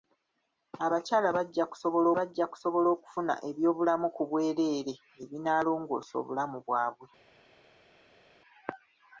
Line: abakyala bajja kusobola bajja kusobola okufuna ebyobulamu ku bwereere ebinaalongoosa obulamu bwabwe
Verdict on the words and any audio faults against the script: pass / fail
pass